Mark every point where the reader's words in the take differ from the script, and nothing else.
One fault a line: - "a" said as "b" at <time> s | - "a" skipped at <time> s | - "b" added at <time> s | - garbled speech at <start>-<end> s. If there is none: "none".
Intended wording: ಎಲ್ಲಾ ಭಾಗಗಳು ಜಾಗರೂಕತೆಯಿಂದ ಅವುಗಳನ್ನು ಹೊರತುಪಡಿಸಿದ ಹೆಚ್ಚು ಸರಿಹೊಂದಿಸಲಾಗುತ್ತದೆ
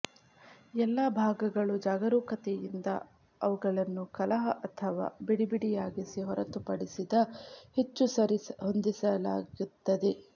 - "ಕಲಹ ಅಥವಾ ಬಿಡಿಬಿಡಿಯಾಗಿಸಿ" added at 4.1 s